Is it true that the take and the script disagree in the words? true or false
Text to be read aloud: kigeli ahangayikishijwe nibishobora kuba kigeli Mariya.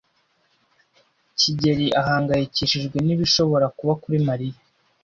true